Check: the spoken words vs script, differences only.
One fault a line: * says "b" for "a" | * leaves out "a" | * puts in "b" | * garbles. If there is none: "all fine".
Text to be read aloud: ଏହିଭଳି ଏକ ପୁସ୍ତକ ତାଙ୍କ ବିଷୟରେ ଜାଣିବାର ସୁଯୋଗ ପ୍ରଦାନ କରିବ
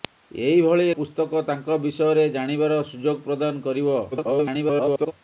* leaves out "ଏକ"
* garbles